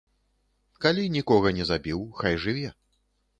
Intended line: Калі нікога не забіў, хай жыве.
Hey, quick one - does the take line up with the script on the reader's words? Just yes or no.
yes